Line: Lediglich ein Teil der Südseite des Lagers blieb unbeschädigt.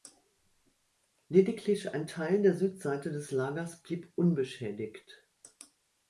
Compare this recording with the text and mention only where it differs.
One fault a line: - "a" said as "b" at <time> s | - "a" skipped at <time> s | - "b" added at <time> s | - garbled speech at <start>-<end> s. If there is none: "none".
none